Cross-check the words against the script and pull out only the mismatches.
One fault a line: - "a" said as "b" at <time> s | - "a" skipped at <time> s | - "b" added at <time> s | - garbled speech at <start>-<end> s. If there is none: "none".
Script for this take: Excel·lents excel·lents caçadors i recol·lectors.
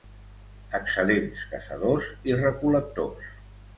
- "excel·lents" skipped at 1.4 s